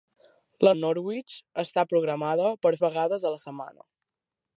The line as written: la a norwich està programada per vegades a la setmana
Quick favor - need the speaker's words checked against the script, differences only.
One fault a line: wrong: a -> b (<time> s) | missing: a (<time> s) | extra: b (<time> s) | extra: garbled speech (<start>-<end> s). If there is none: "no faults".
no faults